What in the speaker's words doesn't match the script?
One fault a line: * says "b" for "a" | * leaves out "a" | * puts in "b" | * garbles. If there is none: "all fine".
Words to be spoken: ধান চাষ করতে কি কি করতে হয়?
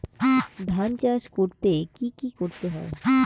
all fine